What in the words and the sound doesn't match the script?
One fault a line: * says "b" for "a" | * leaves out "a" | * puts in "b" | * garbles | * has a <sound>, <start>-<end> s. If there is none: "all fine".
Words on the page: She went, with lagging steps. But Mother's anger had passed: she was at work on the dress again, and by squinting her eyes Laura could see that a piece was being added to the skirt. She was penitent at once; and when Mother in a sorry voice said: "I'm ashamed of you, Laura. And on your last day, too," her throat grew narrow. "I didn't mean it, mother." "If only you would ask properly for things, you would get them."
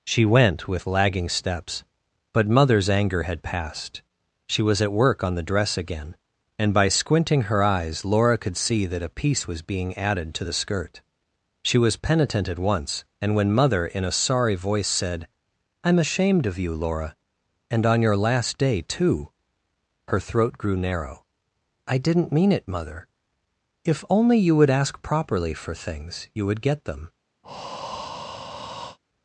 * has a breath, 27.4-29.0 s